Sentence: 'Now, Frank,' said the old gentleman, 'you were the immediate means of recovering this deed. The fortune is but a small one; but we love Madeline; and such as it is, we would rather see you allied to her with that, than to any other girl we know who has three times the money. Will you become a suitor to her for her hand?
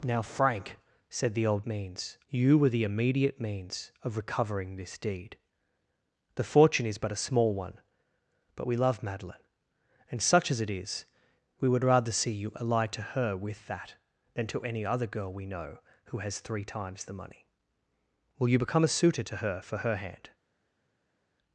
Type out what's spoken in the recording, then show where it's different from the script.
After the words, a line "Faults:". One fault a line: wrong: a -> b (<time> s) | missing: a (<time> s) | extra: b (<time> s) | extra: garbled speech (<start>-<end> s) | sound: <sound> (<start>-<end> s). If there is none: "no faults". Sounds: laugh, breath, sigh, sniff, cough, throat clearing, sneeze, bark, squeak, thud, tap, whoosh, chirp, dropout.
'Now, Frank,' said the old means, 'you were the immediate means of recovering this deed. The fortune is but a small one; but we love Madeline; and such as it is, we would rather see you allied to her with that, than to any other girl we know who has three times the money. Will you become a suitor to her for her hand?
Faults:
wrong: gentleman -> means (1.7 s)